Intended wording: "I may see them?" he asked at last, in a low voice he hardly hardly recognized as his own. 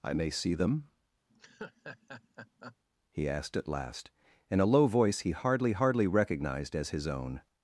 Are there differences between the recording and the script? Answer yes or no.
no